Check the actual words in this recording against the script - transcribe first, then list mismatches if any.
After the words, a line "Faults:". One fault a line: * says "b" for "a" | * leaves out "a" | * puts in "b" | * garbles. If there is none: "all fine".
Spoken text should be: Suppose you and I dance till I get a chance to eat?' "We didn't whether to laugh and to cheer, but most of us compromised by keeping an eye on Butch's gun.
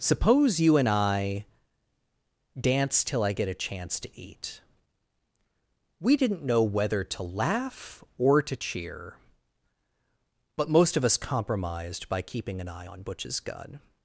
Suppose you and I dance till I get a chance to eat?' "We didn't know whether to laugh or to cheer, but most of us compromised by keeping an eye on Butch's gun.
Faults:
* puts in "know"
* says "or" for "and"